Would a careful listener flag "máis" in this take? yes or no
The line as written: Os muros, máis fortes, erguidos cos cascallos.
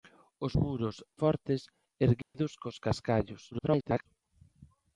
yes